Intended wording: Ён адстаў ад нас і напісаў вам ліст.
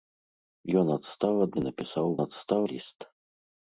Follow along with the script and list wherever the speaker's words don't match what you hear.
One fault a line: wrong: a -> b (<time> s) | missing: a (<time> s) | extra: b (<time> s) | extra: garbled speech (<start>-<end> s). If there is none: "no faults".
missing: нас (1.5 s)
wrong: вам -> адстаў (2.2 s)